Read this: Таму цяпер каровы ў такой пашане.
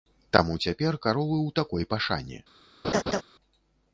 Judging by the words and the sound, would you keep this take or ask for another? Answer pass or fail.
fail